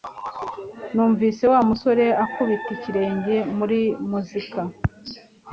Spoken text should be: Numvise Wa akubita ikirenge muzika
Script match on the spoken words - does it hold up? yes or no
no